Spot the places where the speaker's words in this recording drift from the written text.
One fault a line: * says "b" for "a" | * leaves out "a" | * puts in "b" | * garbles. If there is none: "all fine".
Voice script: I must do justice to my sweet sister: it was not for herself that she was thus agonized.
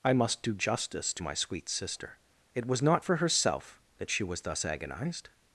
all fine